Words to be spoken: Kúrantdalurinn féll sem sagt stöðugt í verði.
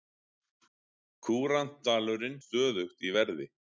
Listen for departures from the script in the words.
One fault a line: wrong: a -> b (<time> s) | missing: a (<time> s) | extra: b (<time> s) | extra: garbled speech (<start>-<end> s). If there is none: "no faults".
missing: féll sem sagt (2.4 s)